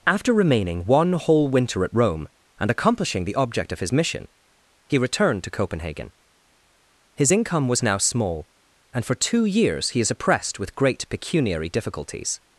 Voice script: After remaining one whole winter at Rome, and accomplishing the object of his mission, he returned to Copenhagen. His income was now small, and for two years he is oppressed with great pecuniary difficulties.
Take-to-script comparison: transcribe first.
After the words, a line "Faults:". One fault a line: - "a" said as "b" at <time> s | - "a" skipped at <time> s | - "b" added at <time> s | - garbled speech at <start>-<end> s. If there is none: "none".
After remaining one whole winter at Rome, and accomplishing the object of his mission, he returned to Copenhagen. His income was now small, and for two years he is oppressed with great pecuniary difficulties.
Faults:
none